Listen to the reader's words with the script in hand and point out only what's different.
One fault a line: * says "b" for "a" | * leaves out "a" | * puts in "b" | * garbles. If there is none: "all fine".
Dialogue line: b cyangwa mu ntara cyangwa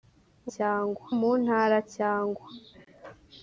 all fine